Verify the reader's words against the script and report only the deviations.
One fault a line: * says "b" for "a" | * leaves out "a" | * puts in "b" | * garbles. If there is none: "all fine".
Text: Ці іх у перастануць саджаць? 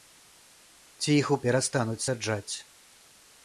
all fine